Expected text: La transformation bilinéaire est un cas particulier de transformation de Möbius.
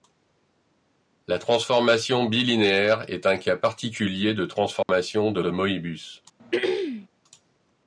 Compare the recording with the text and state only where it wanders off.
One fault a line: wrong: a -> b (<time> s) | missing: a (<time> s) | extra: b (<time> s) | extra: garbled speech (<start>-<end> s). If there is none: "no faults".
extra: de (5.4 s)